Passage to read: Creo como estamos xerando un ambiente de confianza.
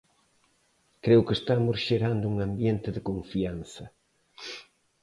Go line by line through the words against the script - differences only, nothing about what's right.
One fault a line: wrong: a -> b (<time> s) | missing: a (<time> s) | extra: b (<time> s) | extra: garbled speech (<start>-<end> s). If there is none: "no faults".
wrong: como -> que (1.3 s)